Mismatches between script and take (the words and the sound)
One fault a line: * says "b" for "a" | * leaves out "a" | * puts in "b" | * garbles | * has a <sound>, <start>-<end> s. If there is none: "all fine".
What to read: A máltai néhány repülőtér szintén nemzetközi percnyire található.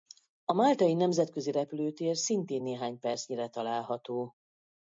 * says "nemzetközi" for "néhány"
* says "néhány" for "nemzetközi"